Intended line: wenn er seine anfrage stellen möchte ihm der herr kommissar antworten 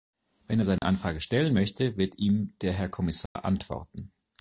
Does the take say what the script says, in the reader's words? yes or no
no